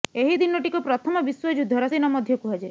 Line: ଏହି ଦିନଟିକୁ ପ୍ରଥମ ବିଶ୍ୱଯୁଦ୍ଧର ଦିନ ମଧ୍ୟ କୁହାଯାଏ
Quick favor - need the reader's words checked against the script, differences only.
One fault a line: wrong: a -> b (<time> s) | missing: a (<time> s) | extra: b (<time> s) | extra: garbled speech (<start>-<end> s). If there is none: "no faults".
no faults